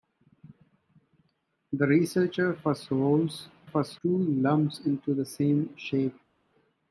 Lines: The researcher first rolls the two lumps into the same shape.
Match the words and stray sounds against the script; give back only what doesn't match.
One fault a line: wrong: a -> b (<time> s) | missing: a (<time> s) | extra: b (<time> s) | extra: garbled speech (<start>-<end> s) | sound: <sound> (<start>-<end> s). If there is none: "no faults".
wrong: the -> first (3.6 s)